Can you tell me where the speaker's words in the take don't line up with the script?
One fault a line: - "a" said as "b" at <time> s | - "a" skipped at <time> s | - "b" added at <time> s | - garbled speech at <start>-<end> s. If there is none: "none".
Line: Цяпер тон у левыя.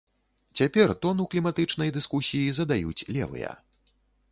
- "кліматычнай дыскусіі задаюць" added at 1.4 s